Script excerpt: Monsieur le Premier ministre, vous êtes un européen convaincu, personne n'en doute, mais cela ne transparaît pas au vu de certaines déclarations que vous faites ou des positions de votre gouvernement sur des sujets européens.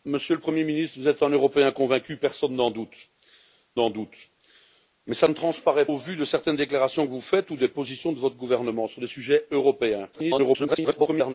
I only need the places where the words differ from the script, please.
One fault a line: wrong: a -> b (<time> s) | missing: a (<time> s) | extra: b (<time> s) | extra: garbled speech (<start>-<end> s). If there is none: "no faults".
extra: n'en doute (3.7 s)
missing: pas (5.9 s)
extra: garbled speech (10.1-11.3 s)